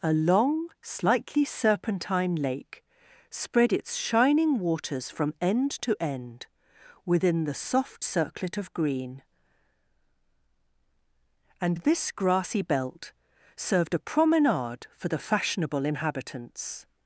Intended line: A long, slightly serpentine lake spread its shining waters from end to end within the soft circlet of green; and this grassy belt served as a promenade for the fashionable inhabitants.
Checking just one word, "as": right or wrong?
wrong